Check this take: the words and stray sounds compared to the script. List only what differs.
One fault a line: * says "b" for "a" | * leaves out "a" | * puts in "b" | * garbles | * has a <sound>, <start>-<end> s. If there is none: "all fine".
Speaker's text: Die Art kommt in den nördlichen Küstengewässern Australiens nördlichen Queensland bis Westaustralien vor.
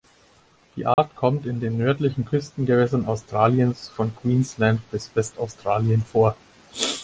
* has a dropout, 0.9-1.0 s
* says "von" for "nördlichen"